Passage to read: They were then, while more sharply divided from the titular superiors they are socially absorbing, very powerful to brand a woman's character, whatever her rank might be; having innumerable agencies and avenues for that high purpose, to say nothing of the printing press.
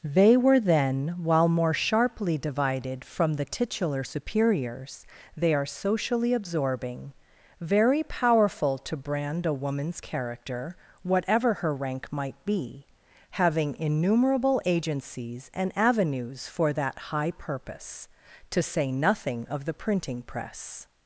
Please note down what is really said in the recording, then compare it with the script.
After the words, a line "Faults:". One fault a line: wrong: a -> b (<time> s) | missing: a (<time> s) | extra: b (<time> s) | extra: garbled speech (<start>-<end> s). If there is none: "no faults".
They were then, while more sharply divided from the titular superiors they are socially absorbing, very powerful to brand a woman's character, whatever her rank might be; having innumerable agencies and avenues for that high purpose, to say nothing of the printing press.
Faults:
no faults